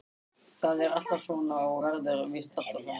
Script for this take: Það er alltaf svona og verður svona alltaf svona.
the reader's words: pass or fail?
fail